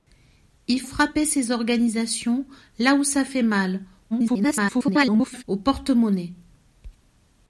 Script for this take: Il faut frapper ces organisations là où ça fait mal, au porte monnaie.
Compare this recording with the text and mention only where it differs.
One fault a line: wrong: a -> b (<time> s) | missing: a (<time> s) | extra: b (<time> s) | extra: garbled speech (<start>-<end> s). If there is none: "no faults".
missing: faut (0.8 s)
extra: garbled speech (4.1-5.4 s)